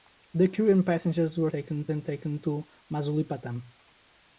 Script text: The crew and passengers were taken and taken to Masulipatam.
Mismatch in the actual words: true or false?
false